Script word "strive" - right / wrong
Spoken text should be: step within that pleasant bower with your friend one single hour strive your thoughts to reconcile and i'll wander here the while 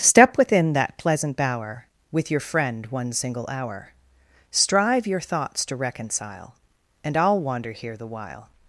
right